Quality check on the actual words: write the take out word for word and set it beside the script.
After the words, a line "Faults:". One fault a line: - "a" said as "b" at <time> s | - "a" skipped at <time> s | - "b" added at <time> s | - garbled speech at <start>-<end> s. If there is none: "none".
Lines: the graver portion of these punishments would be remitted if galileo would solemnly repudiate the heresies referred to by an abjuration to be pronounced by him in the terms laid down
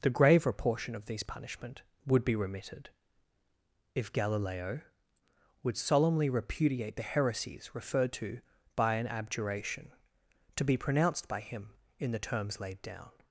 the graver portion of these punishment would be remitted if galileo would solemnly repudiate the heresies referred to by an abjuration to be pronounced by him in the terms laid down
Faults:
- "punishments" said as "punishment" at 1.2 s